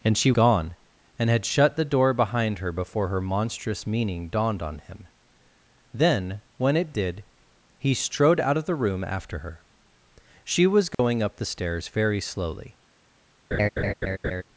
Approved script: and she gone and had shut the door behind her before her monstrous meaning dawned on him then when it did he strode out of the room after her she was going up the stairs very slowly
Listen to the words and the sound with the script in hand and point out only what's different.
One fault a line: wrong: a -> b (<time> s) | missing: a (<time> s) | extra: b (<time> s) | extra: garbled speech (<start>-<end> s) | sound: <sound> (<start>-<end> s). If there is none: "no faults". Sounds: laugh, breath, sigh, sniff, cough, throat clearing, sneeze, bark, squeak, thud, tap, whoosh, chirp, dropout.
sound: dropout (10.9-11.0 s)
sound: laugh (13.5-14.4 s)